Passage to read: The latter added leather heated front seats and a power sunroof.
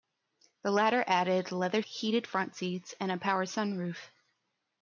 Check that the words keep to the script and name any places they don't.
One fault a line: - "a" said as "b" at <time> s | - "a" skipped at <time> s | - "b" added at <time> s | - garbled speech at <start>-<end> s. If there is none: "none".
none